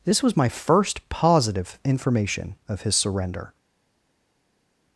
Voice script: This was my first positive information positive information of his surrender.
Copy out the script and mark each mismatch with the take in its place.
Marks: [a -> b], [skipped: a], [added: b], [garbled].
This was my first positive information [skipped: positive information] of his surrender.